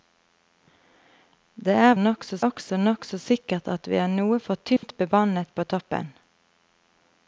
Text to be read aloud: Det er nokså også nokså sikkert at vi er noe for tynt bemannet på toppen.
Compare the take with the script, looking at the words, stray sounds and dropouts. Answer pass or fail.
fail